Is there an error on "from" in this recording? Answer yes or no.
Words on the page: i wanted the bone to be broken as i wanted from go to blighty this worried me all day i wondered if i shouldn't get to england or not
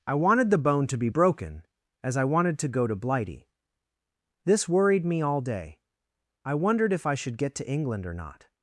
yes